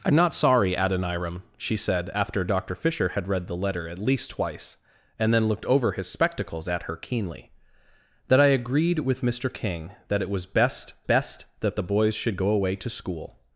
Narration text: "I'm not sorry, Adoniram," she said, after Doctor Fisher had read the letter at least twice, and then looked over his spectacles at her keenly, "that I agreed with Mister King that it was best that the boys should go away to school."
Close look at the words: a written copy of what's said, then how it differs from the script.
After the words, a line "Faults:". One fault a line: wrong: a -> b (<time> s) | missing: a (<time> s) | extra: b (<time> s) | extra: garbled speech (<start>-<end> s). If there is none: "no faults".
"I'm not sorry, Adoniram," she said, after Doctor Fisher had read the letter at least twice, and then looked over his spectacles at her keenly, "that I agreed with Mister King that it was best best that the boys should go away to school."
Faults:
extra: best (11.0 s)